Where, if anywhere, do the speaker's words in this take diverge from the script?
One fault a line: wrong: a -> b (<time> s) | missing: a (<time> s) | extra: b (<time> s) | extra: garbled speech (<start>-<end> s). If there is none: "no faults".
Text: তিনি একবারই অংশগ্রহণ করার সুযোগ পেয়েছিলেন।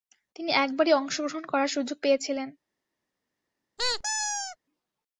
no faults